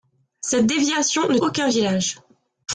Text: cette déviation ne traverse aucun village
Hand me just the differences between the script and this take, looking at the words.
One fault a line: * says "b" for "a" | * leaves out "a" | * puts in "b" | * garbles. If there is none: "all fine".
* leaves out "traverse"